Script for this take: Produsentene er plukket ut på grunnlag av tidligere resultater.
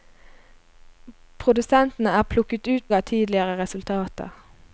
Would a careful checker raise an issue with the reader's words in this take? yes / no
yes